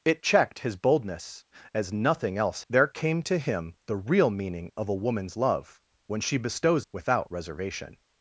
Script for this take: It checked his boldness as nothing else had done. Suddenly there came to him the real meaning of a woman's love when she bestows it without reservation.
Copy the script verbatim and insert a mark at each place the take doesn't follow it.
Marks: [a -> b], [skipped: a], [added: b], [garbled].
It checked his boldness as nothing else [skipped: had done. Suddenly] there came to him the real meaning of a woman's love when she bestows [skipped: it] without reservation.